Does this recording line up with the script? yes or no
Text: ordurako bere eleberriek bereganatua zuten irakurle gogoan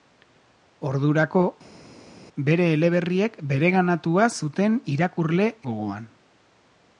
yes